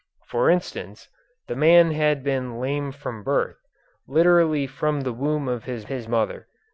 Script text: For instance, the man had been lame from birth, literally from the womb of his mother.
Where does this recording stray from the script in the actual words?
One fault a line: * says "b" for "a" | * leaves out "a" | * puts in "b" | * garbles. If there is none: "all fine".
* puts in "his"